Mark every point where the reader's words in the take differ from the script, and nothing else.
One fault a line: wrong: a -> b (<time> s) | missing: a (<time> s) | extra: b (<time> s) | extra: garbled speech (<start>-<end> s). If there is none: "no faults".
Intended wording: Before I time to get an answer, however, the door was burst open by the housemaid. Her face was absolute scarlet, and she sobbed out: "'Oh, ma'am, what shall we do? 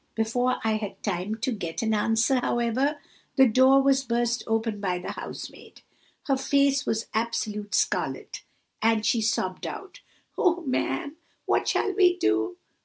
extra: had (0.8 s)